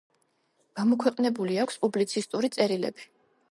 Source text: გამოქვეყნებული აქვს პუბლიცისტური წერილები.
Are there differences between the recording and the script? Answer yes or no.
no